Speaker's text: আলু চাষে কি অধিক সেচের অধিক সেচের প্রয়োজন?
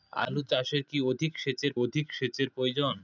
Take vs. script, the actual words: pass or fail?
pass